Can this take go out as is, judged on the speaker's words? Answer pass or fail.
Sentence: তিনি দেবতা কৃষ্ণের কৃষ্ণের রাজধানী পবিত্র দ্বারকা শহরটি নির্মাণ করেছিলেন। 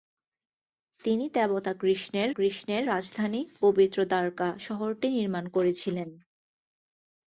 pass